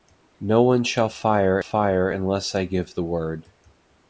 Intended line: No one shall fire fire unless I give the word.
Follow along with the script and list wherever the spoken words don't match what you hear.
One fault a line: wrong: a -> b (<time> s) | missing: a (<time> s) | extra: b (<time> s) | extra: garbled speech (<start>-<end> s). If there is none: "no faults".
no faults